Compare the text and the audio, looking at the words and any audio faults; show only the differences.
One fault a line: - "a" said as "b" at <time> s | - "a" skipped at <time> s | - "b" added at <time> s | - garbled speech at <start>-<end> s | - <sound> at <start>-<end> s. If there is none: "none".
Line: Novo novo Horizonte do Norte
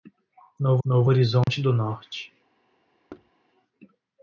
- dropout at 1.4-1.5 s
- thud at 3.1-3.3 s